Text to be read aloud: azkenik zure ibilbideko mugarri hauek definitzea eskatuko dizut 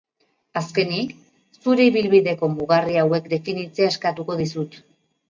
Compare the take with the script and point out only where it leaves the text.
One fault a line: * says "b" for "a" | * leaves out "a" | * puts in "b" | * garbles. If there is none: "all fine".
all fine